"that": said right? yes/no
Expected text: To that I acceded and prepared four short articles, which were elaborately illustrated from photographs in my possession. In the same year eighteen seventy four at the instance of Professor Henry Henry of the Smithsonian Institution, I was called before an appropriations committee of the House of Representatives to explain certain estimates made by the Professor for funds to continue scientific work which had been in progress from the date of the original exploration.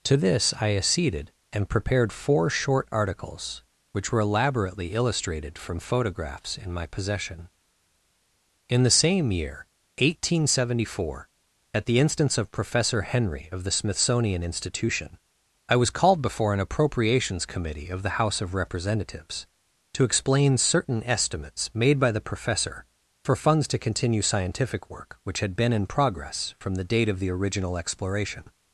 no